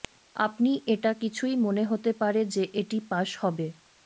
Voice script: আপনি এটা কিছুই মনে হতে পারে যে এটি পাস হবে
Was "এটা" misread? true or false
false